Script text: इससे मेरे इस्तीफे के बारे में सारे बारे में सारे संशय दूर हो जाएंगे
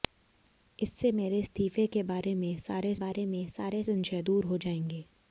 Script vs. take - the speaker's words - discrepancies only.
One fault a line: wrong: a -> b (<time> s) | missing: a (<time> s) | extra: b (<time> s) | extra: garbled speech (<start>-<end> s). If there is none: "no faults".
no faults